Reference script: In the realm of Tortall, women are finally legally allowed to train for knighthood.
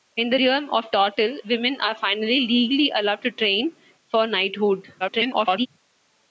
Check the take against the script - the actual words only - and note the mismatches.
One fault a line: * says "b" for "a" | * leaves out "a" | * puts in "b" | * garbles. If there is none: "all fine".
* garbles